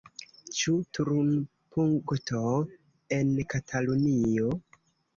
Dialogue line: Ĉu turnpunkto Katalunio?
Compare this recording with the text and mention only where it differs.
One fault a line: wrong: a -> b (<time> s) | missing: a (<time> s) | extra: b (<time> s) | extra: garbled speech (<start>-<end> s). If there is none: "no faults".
extra: en (3.2 s)